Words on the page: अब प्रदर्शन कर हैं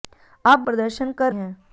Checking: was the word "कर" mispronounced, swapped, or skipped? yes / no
no